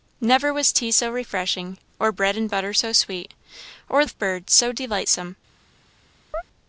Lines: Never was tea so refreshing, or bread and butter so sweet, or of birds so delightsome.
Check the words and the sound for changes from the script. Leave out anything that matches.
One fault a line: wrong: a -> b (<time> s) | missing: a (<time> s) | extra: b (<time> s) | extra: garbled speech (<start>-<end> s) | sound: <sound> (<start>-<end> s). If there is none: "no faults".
sound: chirp (6.3-6.4 s)